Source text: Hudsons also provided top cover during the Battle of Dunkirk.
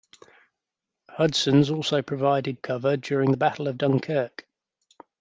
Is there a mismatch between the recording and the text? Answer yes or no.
yes